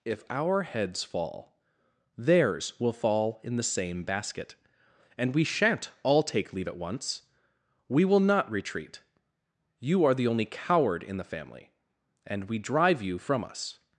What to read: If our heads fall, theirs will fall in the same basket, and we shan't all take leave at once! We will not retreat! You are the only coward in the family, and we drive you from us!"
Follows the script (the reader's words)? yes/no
yes